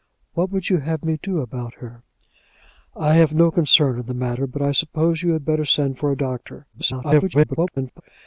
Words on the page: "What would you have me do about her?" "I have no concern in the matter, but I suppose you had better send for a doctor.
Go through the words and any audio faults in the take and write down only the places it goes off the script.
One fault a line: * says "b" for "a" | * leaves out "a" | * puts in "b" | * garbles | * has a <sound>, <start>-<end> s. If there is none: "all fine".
* garbles